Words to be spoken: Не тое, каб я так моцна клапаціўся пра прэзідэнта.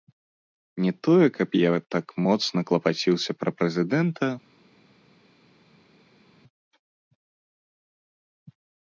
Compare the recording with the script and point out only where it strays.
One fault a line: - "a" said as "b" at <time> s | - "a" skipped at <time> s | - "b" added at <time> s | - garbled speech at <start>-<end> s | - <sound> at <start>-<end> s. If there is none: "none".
none